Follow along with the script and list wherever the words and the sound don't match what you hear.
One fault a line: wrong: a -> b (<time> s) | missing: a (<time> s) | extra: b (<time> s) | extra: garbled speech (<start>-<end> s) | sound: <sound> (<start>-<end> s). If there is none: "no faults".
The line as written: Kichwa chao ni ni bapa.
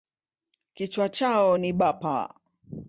missing: ni (1.7 s)